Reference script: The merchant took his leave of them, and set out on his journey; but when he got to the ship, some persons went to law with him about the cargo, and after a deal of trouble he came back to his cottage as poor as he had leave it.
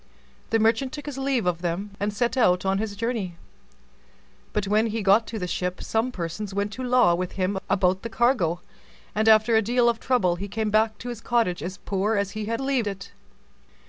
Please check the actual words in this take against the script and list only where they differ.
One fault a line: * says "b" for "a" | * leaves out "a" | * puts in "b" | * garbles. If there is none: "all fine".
all fine